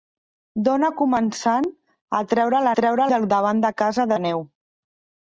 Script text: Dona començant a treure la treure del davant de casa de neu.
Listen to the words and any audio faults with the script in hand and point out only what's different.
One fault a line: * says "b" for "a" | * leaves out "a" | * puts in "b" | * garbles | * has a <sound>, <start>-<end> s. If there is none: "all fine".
all fine